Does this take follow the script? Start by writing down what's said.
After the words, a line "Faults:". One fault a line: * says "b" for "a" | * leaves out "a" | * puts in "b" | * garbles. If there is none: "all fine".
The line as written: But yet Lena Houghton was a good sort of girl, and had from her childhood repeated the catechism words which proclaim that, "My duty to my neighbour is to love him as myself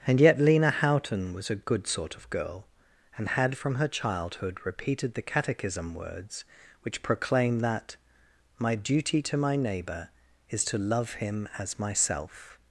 And yet Lena Houghton was a good sort of girl, and had from her childhood repeated the catechism words which proclaim that, "My duty to my neighbour is to love him as myself
Faults:
* says "And" for "But"